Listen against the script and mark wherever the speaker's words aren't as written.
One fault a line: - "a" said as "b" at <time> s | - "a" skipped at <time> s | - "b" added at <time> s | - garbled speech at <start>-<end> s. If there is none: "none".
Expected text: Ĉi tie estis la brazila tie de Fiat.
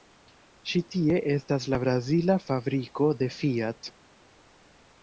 - "estis" said as "estas" at 1.3 s
- "tie" said as "fabriko" at 2.5 s